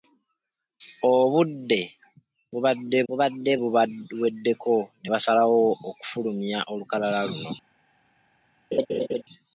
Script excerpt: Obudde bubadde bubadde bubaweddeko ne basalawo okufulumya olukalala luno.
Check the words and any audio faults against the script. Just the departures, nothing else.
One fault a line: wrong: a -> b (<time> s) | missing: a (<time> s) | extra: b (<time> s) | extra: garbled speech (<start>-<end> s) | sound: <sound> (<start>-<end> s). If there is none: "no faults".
sound: laugh (8.7-9.2 s)